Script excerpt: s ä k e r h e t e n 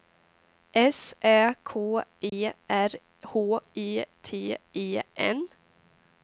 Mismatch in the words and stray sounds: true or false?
true